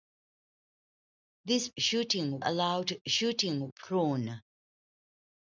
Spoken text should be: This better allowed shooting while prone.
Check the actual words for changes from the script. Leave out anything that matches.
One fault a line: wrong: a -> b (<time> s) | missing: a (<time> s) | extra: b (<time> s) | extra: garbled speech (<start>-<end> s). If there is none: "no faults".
wrong: better -> shooting (1.8 s)
missing: while (3.7 s)